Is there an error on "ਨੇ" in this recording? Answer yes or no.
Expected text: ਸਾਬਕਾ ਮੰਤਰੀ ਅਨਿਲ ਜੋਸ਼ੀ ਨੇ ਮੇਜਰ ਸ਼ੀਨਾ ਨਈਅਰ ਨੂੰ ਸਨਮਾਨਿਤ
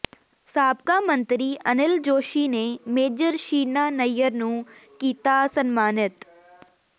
no